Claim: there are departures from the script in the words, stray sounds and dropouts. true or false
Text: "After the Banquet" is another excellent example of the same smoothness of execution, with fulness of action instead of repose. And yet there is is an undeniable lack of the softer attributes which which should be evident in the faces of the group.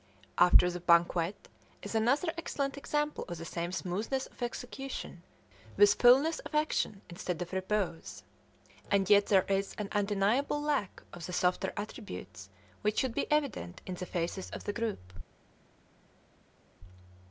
true